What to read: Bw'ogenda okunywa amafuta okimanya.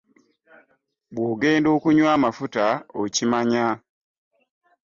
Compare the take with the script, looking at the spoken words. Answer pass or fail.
pass